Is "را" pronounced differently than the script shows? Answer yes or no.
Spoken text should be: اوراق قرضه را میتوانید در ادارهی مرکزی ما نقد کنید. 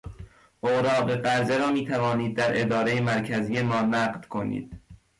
no